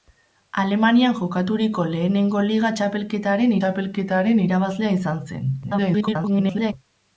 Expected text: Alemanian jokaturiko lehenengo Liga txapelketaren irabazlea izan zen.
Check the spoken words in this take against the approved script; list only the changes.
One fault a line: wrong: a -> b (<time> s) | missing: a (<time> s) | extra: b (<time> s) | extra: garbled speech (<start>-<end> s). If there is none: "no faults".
extra: txapelketaren (3.6 s)
extra: garbled speech (5.6-6.7 s)